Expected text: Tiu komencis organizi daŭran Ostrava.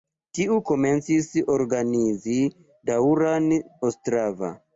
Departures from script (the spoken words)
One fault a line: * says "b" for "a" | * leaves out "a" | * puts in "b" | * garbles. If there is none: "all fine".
all fine